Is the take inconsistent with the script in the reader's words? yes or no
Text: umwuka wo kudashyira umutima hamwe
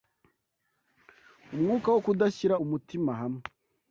no